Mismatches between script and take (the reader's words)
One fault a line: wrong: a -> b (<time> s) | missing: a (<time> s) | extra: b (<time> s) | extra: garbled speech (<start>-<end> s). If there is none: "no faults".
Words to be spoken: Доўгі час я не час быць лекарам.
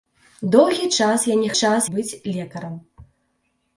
no faults